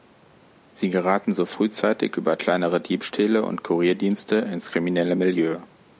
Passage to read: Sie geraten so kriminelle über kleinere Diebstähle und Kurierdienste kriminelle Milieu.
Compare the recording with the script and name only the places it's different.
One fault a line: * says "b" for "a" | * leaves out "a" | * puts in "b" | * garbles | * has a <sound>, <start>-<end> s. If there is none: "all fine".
* says "frühzeitig" for "kriminelle"
* puts in "ins"